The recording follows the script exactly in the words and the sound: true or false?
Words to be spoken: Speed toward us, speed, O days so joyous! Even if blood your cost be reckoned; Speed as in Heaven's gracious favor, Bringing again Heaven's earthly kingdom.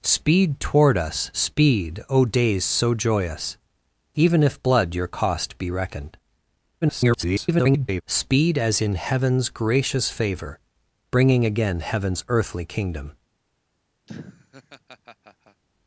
false